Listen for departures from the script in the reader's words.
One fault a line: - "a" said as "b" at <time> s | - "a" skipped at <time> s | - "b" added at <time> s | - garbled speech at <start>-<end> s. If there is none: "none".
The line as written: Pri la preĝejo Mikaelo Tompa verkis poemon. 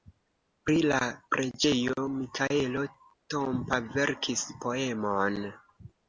none